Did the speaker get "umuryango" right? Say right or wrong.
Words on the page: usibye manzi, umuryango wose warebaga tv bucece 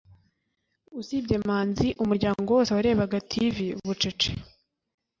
right